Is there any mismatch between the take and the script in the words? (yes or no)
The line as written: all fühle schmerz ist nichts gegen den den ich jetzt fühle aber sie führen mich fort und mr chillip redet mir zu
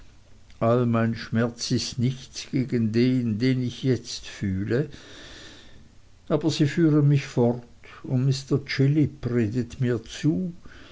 yes